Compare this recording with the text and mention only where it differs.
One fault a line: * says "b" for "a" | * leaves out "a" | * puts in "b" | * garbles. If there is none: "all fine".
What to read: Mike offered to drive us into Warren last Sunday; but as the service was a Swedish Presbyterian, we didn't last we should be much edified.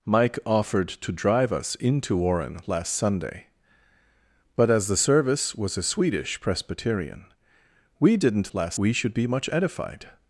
all fine